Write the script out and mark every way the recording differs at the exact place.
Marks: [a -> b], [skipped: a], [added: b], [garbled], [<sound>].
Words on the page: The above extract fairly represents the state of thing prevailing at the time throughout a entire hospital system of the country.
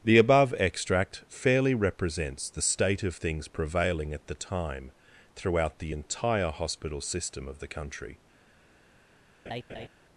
The above extract fairly represents the state of [thing -> things] prevailing at the time throughout [a -> the] entire hospital system of the country. [laugh]